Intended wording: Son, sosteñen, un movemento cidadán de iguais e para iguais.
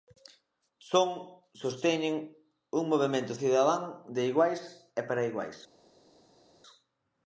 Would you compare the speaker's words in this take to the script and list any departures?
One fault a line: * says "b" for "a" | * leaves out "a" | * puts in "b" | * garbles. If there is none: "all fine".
all fine